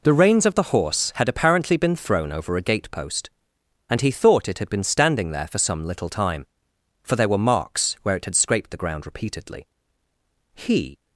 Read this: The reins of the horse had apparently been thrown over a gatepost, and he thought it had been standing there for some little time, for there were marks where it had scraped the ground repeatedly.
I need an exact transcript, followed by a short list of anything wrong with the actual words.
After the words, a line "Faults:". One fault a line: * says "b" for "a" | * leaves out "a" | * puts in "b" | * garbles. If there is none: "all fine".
The reins of the horse had apparently been thrown over a gatepost, and he thought it had been standing there for some little time, for there were marks where it had scraped the ground repeatedly. He
Faults:
* puts in "He"